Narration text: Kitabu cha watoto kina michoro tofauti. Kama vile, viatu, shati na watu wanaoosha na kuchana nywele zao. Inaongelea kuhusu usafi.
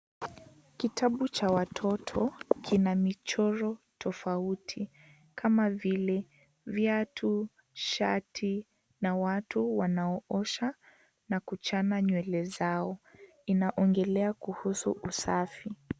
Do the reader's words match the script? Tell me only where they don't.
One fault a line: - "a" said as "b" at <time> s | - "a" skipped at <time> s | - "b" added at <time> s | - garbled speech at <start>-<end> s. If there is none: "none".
none